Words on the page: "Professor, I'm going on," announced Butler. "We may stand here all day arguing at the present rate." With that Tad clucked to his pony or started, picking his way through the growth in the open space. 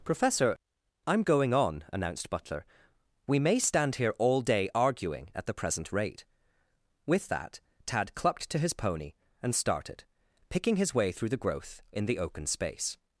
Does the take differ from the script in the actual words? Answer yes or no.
yes